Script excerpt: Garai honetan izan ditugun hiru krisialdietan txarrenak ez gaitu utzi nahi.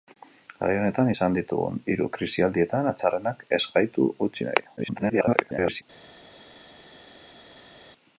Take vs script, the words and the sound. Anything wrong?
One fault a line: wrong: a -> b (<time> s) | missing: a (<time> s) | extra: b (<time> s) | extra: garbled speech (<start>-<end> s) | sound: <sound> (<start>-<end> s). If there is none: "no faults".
extra: garbled speech (4.8-5.8 s)